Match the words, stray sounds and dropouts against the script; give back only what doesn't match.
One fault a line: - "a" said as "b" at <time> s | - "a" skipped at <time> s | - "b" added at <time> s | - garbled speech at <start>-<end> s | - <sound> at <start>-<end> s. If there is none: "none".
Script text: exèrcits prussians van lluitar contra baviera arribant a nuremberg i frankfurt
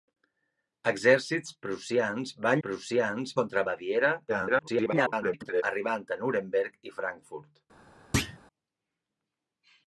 - "lluitar" said as "prussians" at 2.7 s
- garbled speech at 4.3-5.6 s
- thud at 8.1-8.4 s